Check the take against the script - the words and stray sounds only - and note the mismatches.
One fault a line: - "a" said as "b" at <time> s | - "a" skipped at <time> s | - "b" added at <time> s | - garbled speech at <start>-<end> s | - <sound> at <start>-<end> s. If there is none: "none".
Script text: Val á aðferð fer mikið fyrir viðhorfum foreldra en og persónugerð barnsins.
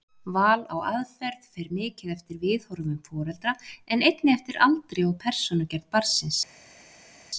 - "fyrir" said as "eftir" at 2.1 s
- "einnig eftir aldri" added at 4.1 s